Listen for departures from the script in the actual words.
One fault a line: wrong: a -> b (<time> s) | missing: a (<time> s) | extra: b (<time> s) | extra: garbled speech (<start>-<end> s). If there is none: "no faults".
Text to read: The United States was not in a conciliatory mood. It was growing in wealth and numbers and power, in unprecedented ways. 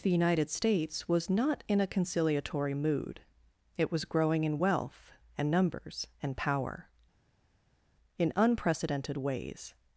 no faults